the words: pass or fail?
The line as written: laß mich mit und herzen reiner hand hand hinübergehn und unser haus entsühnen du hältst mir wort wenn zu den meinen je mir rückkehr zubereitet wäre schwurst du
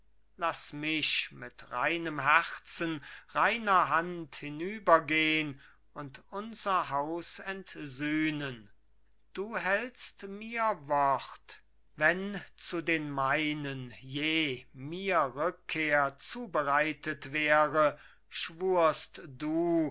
fail